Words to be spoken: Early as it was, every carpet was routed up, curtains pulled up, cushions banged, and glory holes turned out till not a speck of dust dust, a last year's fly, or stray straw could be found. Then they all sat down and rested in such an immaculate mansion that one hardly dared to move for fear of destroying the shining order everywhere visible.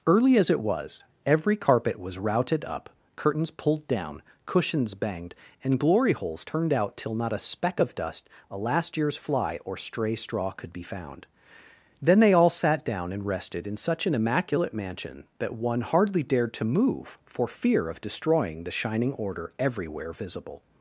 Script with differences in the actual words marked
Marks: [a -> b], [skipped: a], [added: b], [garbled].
Early as it was, every carpet was routed up, curtains pulled [up, -> down] cushions banged, and glory holes turned out till not a speck of dust [skipped: dust,] a last year's fly, or stray straw could be found. Then they all sat down and rested in such an immaculate mansion that one hardly dared to move for fear of destroying the shining order everywhere visible.